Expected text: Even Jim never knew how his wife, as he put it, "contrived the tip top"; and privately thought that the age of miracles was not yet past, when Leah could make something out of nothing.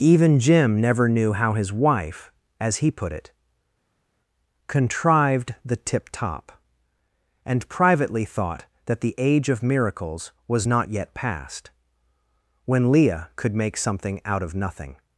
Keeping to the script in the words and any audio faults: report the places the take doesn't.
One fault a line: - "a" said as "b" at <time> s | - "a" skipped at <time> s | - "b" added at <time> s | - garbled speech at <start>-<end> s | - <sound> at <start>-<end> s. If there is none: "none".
none